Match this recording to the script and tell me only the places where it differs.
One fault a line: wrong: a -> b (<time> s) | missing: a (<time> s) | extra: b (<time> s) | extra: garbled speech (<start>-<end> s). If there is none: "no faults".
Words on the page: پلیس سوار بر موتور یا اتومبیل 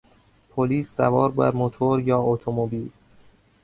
no faults